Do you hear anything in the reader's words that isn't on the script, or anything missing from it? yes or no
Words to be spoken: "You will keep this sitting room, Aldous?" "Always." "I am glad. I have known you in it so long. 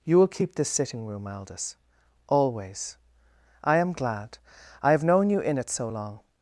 no